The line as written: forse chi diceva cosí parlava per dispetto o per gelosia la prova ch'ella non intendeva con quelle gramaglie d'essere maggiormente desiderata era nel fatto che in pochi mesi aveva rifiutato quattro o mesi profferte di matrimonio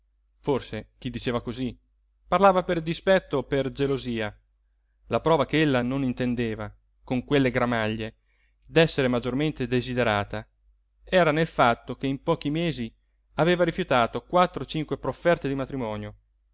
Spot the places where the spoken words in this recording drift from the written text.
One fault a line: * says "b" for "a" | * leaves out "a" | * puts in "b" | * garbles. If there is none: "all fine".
* says "cinque" for "mesi"